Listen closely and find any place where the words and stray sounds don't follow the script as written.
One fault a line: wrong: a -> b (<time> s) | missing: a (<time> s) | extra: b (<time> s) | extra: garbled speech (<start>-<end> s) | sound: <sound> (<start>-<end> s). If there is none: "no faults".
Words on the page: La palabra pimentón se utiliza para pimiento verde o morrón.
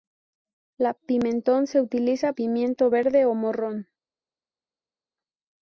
missing: palabra (0.9 s)
missing: para (2.3 s)